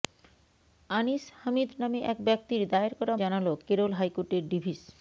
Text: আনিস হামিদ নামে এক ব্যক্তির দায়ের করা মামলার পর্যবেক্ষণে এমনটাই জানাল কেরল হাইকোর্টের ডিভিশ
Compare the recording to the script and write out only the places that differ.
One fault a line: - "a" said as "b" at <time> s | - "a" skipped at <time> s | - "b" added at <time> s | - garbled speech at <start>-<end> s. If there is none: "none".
- "মামলার পর্যবেক্ষণে এমনটাই" skipped at 3.1 s